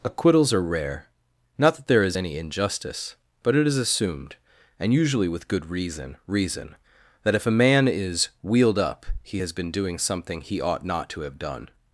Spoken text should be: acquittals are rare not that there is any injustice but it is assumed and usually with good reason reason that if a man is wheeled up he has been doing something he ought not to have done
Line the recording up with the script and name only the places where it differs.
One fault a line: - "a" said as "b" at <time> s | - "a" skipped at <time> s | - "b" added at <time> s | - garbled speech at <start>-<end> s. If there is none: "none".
none